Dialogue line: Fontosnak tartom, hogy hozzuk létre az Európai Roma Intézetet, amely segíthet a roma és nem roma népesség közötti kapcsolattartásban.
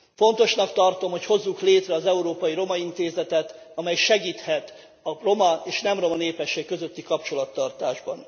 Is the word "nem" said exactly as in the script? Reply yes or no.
yes